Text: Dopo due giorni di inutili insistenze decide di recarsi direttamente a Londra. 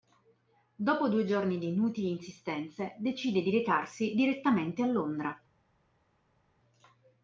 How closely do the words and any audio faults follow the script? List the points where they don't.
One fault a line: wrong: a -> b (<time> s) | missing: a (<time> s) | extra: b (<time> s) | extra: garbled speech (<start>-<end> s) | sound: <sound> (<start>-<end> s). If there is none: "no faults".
no faults